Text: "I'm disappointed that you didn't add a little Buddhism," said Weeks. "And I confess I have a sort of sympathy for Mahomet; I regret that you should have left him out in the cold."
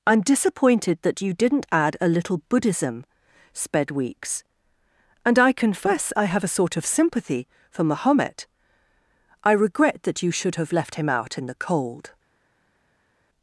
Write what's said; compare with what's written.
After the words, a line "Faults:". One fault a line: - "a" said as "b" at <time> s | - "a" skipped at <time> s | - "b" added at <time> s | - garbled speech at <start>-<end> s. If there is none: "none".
"I'm disappointed that you didn't add a little Buddhism," sped Weeks. "And I confess I have a sort of sympathy for Mahomet; I regret that you should have left him out in the cold."
Faults:
- "said" said as "sped" at 3.5 s